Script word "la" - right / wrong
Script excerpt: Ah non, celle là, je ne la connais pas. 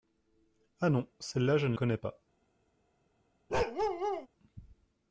wrong